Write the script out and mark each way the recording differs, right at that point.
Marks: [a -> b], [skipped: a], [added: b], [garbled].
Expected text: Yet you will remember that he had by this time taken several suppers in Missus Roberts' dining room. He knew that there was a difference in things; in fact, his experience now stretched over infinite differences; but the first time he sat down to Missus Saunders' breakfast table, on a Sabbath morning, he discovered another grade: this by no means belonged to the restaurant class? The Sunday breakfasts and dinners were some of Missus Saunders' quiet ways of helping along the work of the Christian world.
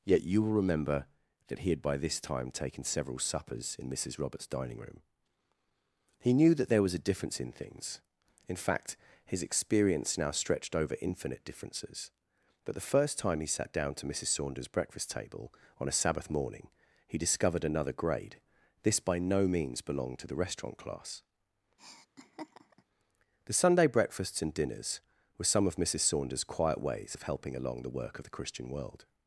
Yet you will remember that he had by this time taken several suppers in Missus Roberts' dining room. He knew that there was a difference in things; in fact, his experience now stretched over infinite differences; but the first time he sat down to Missus Saunders' breakfast table, on a Sabbath morning, he discovered another grade: this by no means belonged to the restaurant class? The Sunday breakfasts and dinners were some of Missus Saunders' quiet ways of helping along the work of the Christian world.